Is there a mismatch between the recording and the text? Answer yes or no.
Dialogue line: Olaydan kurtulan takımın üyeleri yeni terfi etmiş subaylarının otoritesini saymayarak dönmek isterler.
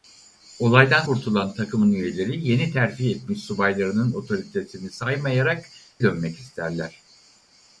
no